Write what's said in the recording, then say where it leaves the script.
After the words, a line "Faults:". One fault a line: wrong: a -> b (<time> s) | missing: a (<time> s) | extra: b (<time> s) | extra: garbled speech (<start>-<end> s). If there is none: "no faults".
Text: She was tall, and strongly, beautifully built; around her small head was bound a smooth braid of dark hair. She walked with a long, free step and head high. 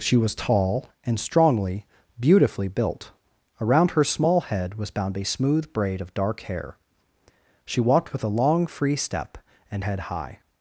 She was tall, and strongly, beautifully built; around her small head was bound a smooth braid of dark hair. She walked with a long, free step and head high.
Faults:
no faults